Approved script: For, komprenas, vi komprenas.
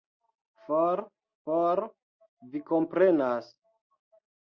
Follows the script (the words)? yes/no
no